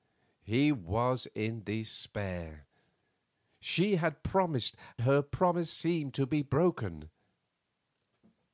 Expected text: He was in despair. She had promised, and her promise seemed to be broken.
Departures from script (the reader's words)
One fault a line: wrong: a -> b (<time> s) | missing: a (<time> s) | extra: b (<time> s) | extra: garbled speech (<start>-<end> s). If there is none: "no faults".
missing: and (4.8 s)